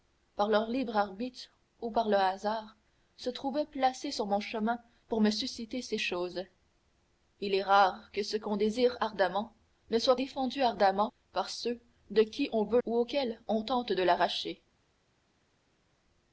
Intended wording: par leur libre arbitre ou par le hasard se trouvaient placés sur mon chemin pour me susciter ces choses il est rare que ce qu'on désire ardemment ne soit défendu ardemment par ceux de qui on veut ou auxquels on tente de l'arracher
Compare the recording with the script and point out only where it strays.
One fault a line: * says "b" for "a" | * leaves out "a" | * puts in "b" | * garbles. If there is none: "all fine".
all fine